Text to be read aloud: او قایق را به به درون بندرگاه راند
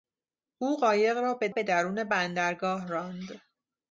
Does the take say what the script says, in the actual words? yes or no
yes